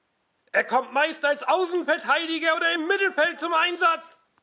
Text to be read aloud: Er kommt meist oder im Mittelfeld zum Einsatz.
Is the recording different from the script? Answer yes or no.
yes